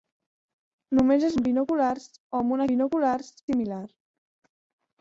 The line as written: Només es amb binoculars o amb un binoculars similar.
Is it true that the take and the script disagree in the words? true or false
false